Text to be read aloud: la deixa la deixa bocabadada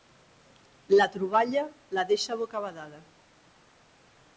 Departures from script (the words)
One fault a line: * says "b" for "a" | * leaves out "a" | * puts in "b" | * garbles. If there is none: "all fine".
* says "troballa" for "deixa"